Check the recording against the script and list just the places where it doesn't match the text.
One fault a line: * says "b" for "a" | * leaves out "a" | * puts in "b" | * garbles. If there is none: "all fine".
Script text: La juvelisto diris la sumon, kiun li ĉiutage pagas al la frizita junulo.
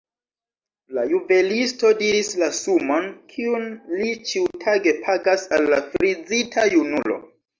all fine